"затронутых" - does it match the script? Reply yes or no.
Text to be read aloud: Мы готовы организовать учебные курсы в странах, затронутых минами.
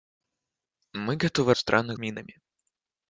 no